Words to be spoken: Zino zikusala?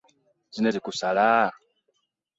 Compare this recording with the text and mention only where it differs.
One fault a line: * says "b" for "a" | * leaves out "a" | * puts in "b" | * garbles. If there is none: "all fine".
all fine